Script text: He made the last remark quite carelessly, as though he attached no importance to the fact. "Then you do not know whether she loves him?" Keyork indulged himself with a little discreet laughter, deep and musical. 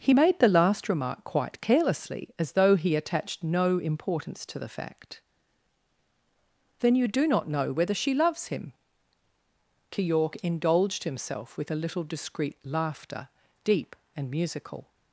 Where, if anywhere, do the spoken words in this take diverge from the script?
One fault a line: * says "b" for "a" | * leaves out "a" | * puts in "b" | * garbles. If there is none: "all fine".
all fine